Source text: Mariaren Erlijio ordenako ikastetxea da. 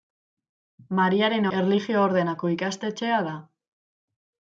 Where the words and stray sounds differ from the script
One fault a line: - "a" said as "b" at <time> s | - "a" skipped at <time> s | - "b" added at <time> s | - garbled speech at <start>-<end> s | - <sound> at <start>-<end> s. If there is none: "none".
none